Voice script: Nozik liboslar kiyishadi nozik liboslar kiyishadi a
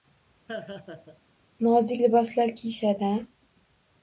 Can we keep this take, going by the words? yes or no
no